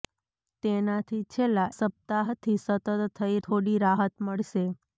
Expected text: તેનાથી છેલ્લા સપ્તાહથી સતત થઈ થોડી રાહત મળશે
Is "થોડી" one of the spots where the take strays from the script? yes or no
no